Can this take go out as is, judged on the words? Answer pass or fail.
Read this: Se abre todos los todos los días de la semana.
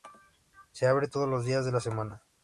fail